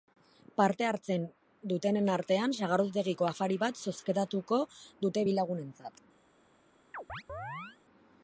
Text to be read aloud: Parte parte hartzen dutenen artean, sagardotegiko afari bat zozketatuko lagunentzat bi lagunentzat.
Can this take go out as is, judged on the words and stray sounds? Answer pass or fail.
fail